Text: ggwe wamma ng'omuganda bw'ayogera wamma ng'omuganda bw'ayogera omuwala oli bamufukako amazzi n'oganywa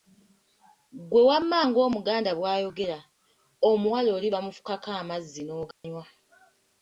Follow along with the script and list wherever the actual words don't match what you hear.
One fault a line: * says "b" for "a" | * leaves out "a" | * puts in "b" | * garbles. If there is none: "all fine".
* leaves out "wamma ng'omuganda bw'ayogera"